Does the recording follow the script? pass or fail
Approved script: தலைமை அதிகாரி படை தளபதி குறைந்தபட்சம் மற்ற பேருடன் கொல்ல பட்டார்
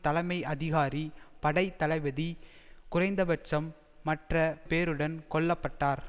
pass